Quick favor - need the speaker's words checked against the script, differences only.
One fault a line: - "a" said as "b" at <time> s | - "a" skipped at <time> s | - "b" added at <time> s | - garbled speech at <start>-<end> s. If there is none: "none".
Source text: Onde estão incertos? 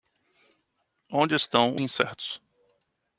none